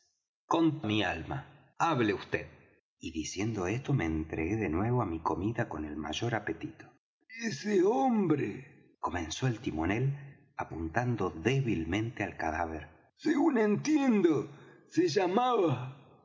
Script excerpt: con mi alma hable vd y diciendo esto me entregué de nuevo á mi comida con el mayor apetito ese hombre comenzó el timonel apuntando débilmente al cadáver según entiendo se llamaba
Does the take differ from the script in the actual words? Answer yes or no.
no